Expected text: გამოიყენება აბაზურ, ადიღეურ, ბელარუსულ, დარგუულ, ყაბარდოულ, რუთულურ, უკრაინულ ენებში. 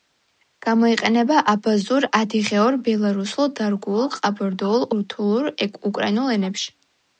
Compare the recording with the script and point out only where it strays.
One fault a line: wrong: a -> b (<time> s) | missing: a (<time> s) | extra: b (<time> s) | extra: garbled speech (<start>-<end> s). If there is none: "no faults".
no faults